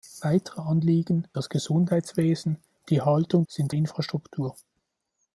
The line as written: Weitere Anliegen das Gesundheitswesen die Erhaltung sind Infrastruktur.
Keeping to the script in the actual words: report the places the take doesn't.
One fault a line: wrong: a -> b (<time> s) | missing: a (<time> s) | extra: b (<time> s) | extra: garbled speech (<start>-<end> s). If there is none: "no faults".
no faults